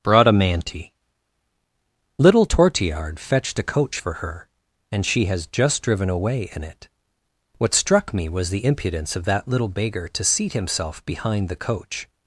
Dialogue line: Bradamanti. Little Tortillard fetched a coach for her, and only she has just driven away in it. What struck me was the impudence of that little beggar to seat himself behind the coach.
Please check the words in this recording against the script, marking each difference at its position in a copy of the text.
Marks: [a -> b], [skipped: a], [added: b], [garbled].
Bradamanti. Little Tortillard fetched a coach for her, and [skipped: only] she has just driven away in it. What struck me was the impudence of that little beggar to seat himself behind the coach.